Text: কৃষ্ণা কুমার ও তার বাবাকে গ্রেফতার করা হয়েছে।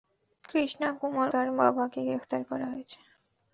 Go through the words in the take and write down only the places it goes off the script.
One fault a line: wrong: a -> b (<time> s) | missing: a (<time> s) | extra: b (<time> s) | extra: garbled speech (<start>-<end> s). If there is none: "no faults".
missing: ও (1.3 s)